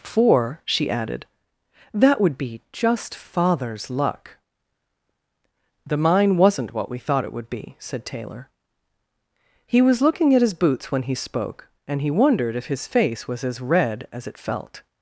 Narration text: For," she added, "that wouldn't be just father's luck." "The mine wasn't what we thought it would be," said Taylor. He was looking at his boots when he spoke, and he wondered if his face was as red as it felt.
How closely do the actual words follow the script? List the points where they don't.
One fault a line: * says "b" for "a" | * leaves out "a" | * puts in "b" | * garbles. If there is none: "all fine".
* says "would" for "wouldn't"